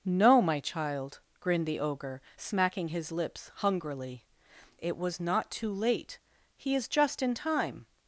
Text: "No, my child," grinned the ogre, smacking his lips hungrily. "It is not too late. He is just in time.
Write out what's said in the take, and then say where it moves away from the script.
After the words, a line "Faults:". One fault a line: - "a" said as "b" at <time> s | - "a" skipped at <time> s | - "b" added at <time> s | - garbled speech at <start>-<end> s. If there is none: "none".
"No, my child," grinned the ogre, smacking his lips hungrily. "It was not too late. He is just in time.
Faults:
- "is" said as "was" at 5.0 s